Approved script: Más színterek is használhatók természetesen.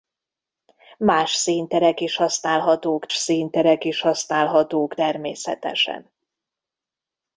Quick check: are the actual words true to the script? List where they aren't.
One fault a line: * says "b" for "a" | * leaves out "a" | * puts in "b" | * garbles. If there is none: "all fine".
* puts in "színterek is használhatók"